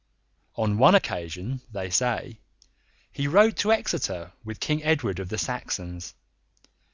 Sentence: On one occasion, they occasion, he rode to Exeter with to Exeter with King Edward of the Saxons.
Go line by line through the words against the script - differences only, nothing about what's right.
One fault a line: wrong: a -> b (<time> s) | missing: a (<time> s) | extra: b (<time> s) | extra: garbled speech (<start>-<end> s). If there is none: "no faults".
wrong: occasion -> say (1.9 s)
missing: to Exeter with (4.6 s)